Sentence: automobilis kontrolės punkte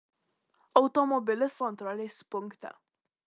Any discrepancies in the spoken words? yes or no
no